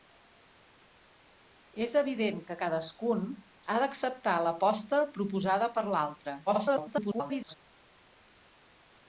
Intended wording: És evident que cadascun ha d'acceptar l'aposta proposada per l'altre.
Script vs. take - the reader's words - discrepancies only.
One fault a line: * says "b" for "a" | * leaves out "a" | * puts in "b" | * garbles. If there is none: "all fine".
* garbles